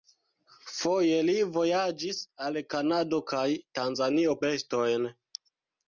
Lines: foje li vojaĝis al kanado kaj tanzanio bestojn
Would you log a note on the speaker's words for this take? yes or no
no